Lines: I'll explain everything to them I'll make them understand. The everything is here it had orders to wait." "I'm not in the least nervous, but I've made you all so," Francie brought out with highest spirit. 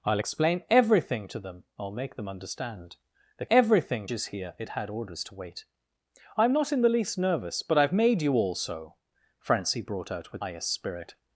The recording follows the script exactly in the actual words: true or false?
true